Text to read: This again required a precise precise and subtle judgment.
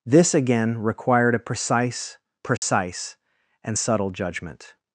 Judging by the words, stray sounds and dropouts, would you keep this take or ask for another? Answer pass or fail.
fail